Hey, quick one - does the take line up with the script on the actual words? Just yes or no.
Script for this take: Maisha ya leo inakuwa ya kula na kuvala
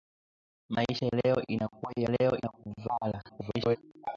no